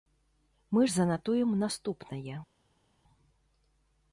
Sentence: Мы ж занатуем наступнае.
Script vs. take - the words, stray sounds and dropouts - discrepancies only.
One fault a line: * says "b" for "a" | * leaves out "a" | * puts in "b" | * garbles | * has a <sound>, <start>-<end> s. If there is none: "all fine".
all fine